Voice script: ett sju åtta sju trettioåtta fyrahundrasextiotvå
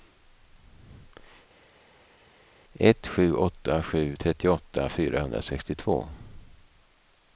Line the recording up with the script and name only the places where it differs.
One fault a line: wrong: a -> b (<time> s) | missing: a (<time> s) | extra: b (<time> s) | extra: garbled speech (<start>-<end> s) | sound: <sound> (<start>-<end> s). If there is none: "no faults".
no faults